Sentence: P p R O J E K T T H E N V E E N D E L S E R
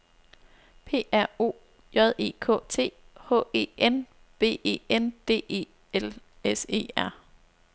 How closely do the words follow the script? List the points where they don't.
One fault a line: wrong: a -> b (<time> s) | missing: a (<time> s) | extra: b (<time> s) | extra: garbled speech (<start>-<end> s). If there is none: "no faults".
missing: p (1.1 s)
missing: T (2.9 s)
missing: E (4.8 s)